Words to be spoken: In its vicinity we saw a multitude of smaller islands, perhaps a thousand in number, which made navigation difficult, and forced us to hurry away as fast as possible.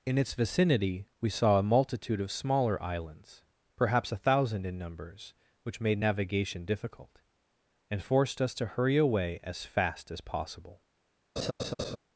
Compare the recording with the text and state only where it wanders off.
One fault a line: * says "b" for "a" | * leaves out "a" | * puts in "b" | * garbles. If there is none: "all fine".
* says "numbers" for "number"